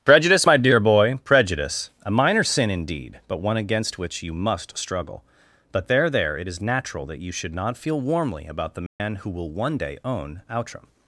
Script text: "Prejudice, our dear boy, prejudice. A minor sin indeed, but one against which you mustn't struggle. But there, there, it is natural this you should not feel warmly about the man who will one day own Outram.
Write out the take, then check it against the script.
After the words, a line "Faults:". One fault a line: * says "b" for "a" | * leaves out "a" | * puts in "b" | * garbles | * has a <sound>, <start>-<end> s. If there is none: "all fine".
"Prejudice, my dear boy, prejudice. A minor sin indeed, but one against which you must struggle. But there, there, it is natural that you should not feel warmly about the man who will one day own Outram.
Faults:
* says "my" for "our"
* says "must" for "mustn't"
* says "that" for "this"
* has a dropout, 8.9-9.0 s